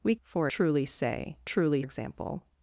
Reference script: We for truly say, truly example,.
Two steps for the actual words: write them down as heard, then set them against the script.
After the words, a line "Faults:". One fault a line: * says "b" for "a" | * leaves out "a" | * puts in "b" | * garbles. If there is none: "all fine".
We for truly say, truly example,.
Faults:
all fine